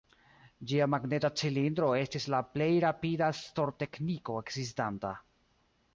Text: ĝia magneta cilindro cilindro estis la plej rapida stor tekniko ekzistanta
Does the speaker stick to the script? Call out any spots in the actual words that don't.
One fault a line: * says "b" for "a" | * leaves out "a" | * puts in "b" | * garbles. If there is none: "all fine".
* leaves out "cilindro"